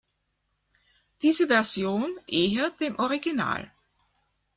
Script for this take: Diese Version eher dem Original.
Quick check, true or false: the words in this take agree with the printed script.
true